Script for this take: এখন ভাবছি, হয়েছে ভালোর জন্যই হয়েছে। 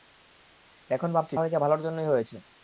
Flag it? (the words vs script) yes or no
no